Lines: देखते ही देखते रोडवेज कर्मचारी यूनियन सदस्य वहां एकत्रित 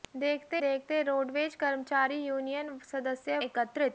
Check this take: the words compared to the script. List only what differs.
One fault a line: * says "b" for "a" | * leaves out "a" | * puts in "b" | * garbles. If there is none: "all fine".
* leaves out "ही"
* leaves out "वहां"